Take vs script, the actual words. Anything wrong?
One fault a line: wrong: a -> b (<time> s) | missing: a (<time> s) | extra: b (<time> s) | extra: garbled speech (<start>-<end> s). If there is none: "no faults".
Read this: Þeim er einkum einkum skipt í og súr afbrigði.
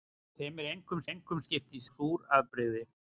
no faults